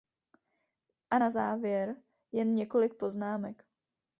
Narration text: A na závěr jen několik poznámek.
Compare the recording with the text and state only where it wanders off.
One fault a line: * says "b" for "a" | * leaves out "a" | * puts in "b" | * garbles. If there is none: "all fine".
all fine